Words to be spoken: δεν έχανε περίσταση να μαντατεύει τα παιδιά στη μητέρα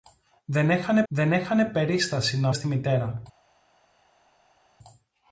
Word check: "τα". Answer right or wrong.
wrong